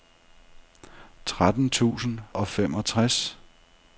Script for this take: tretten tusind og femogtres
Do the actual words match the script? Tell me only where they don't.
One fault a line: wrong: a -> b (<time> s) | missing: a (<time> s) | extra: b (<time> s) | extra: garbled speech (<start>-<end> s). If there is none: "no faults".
no faults